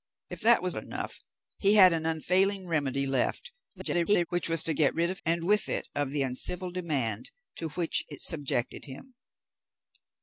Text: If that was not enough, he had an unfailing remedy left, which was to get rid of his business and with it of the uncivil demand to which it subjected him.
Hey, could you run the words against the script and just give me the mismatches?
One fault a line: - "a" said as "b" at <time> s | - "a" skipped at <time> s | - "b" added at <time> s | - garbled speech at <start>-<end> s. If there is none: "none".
- "not" skipped at 0.8 s
- garbled speech at 3.7-4.3 s
- "his business" skipped at 5.2 s